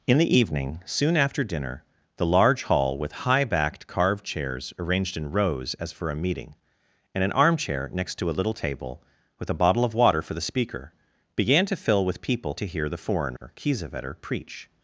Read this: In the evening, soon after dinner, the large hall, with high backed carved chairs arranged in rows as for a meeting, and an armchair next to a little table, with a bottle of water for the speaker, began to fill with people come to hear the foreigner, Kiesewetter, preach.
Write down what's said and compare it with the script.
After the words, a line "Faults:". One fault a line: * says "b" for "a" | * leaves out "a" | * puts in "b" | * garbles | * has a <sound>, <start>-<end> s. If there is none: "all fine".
In the evening, soon after dinner, the large hall, with high backed carved chairs arranged in rows as for a meeting, and an armchair next to a little table, with a bottle of water for the speaker, began to fill with people to hear the foreigner, Kiesewetter, preach.
Faults:
* leaves out "come"
* has a dropout, 13.4-13.4 s